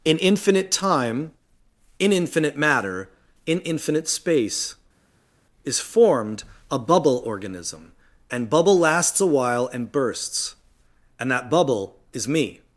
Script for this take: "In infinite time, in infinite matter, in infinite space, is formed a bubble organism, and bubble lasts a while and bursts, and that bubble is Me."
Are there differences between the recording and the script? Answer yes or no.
no